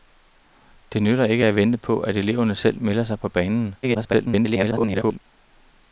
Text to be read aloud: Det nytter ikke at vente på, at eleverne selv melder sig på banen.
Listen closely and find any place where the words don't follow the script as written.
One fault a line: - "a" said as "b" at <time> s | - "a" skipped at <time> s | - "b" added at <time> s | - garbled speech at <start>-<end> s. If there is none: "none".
- garbled speech at 3.8-5.2 s